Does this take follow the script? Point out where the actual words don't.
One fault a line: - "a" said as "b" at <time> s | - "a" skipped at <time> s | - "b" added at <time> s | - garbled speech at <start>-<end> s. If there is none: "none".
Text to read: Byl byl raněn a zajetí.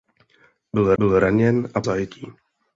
none